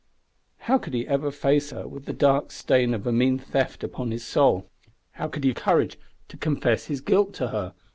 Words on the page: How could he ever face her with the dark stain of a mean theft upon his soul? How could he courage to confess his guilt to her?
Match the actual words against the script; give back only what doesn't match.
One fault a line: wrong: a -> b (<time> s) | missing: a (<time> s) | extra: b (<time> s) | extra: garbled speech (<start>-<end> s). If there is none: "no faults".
no faults